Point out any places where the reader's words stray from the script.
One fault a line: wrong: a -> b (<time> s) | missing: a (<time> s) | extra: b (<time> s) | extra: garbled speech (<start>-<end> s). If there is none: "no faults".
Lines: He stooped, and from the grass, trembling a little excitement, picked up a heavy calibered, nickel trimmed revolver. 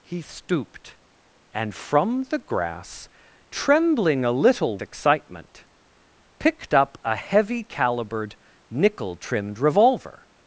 no faults